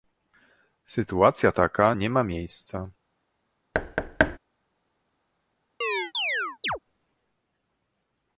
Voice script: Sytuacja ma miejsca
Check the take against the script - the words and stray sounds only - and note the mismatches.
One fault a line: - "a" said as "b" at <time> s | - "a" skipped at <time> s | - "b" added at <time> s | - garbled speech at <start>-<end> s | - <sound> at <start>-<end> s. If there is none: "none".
- "taka nie" added at 1.5 s
- thud at 3.7-4.4 s
- chirp at 5.8-6.8 s